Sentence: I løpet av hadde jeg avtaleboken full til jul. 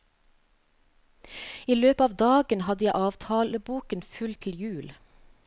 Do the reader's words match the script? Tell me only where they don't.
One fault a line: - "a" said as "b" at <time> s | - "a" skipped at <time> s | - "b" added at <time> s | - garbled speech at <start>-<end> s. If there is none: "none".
- "dagen" added at 2.2 s